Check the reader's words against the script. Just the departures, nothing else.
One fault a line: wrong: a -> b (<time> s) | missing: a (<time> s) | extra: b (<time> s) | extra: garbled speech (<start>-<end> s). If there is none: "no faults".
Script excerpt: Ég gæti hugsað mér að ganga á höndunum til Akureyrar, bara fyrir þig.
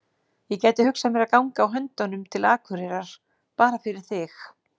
no faults